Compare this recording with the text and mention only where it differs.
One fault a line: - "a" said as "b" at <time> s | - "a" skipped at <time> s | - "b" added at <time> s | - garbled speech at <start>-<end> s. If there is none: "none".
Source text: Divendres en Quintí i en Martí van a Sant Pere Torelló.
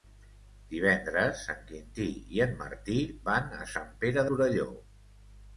none